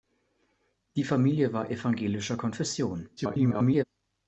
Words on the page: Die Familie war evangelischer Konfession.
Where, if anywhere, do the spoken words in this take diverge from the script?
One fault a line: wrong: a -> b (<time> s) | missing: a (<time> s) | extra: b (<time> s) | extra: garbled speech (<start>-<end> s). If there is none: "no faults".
extra: garbled speech (3.2-3.8 s)